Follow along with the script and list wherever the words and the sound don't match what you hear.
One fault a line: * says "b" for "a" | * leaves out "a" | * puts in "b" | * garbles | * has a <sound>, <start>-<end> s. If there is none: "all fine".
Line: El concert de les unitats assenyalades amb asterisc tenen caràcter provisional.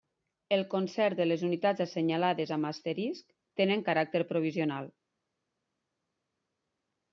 all fine